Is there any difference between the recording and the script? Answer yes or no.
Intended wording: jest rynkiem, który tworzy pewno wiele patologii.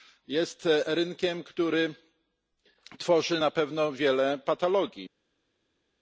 yes